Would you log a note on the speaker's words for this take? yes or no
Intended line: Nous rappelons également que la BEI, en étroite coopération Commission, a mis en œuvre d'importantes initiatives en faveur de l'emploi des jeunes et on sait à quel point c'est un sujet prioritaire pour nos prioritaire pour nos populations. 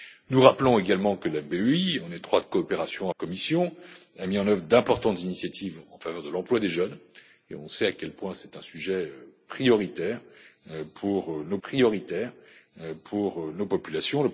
no